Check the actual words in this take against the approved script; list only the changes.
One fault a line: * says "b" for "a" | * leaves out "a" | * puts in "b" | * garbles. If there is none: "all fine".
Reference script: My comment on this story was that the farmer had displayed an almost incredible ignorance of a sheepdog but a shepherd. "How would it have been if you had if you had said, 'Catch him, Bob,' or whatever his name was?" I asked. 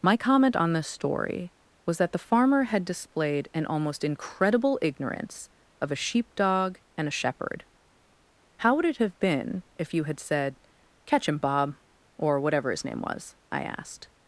* says "and" for "but"
* leaves out "if you had"